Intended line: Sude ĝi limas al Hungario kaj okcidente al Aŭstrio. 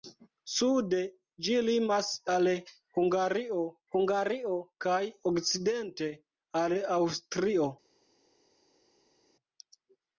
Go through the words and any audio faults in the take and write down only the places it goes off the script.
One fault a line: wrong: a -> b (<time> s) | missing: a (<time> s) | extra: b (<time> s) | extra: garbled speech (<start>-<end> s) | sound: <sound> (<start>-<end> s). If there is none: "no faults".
extra: Hungario (4.0 s)